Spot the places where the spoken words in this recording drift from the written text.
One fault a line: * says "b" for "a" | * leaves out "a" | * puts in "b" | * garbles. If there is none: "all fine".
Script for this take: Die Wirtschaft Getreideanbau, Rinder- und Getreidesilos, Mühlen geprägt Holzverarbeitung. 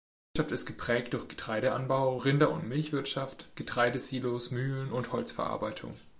* puts in "ist geprägt durch"
* puts in "Milchwirtschaft"
* says "und" for "geprägt"